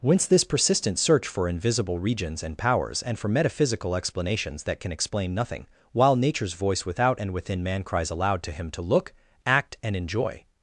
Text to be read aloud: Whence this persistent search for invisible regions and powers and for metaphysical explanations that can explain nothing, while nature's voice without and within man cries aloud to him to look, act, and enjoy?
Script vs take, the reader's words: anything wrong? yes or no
no